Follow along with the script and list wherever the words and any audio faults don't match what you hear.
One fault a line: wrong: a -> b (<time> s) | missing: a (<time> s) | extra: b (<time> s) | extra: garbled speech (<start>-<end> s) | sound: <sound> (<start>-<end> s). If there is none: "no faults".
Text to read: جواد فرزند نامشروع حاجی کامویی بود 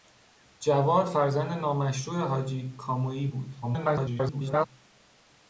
extra: garbled speech (3.6-4.7 s)